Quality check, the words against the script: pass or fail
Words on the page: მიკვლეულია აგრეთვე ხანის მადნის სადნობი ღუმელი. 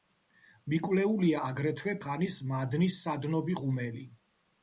pass